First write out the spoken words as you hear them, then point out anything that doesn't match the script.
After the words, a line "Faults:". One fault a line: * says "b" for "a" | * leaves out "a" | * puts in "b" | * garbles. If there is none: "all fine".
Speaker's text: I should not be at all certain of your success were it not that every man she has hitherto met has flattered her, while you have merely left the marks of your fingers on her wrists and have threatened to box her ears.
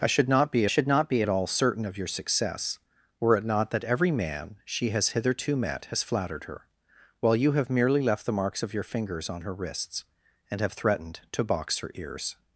I should not be should not be at all certain of your success were it not that every man she has hitherto met has flattered her, while you have merely left the marks of your fingers on her wrists and have threatened to box her ears.
Faults:
* puts in "should not be"